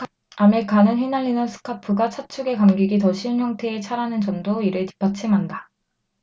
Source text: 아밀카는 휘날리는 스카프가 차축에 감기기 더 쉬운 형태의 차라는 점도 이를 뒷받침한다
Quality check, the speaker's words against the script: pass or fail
pass